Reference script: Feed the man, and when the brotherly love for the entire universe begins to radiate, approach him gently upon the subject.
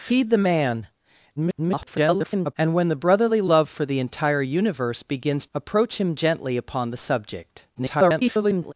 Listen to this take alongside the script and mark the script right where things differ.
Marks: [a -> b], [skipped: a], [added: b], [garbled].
Feed the man, [garbled] and when the brotherly love for the entire universe begins [skipped: to radiate,] approach him gently upon the subject. [garbled]